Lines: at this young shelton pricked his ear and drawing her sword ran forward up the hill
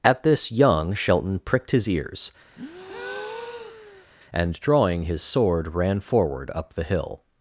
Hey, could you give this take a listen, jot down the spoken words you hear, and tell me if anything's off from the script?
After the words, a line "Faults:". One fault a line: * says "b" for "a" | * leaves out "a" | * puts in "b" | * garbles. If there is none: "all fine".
at this young shelton pricked his ears and drawing his sword ran forward up the hill
Faults:
* says "ears" for "ear"
* says "his" for "her"